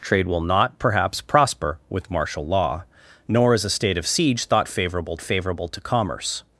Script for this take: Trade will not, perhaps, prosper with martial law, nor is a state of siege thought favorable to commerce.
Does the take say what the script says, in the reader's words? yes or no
no